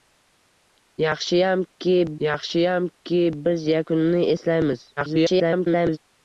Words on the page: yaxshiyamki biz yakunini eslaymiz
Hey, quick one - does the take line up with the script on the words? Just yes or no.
no